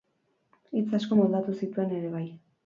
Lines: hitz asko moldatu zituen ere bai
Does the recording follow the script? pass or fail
pass